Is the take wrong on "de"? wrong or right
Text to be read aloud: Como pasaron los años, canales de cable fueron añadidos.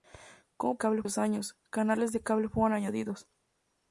right